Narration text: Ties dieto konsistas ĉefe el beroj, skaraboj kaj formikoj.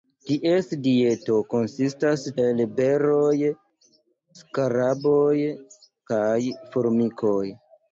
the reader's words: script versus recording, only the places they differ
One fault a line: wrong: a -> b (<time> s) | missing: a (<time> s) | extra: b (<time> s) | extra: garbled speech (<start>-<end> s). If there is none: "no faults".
missing: ĉefe (2.2 s)